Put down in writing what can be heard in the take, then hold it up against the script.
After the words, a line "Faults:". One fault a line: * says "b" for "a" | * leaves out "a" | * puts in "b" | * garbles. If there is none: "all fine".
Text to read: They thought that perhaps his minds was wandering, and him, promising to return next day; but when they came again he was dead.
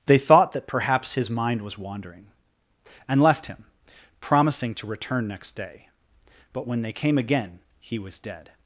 They thought that perhaps his mind was wandering, and left him, promising to return next day; but when they came again he was dead.
Faults:
* says "mind" for "minds"
* puts in "left"